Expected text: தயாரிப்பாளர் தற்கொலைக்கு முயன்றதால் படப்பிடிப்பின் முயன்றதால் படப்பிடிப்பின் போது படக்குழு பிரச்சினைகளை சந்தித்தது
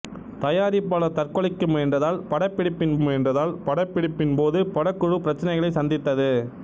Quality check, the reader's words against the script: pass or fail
pass